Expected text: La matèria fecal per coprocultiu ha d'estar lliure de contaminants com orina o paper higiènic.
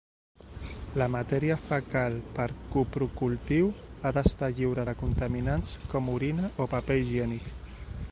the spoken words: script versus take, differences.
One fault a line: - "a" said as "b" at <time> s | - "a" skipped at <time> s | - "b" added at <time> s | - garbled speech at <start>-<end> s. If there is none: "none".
none